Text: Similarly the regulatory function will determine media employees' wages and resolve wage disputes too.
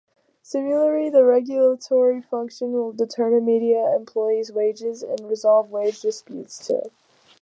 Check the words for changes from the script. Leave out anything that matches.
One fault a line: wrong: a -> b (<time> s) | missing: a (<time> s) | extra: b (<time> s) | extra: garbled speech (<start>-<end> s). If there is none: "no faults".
no faults